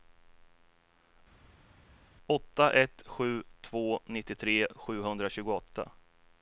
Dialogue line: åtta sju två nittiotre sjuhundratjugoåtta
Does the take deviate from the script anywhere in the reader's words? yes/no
yes